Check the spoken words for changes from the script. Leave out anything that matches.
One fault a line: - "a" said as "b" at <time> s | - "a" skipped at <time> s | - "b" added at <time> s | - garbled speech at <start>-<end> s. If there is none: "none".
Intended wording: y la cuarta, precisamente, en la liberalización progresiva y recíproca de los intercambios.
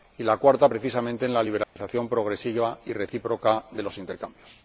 none